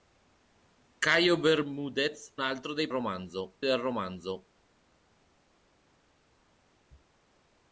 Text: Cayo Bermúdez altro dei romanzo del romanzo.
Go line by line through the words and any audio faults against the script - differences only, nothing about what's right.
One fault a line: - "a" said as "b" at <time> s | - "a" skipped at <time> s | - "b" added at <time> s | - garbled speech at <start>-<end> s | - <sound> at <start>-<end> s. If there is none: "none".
none